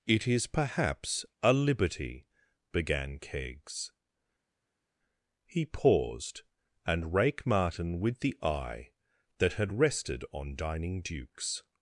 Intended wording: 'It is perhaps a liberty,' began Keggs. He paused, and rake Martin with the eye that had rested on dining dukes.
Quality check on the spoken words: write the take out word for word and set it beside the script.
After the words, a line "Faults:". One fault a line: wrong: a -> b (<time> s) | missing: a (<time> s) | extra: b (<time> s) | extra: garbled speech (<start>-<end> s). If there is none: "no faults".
'It is perhaps a liberty,' began Keggs. He paused, and rake Martin with the eye that had rested on dining dukes.
Faults:
no faults